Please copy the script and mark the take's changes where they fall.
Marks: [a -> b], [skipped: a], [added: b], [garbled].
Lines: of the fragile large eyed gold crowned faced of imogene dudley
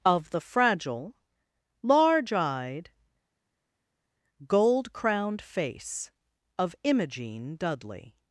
of the fragile large eyed gold crowned [faced -> face] of imogene dudley